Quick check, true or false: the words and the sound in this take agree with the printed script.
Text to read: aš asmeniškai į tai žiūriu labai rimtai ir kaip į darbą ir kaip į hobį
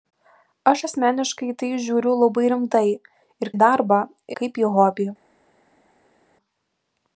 false